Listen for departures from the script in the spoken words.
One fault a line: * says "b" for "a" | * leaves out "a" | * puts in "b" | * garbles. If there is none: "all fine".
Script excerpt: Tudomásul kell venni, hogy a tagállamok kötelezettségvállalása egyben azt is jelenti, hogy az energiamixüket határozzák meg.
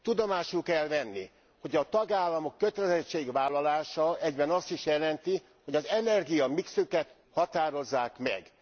all fine